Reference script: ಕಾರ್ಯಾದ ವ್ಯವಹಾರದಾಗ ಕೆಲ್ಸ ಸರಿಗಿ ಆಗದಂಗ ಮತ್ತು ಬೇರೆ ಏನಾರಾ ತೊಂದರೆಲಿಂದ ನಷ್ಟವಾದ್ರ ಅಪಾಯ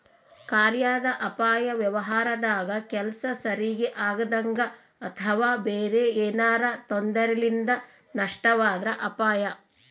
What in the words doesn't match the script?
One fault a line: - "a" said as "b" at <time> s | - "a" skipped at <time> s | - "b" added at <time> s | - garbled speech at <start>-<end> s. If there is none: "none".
- "ಅಪಾಯ" added at 1.2 s
- "ಮತ್ತು" said as "ಅಥವಾ" at 5.0 s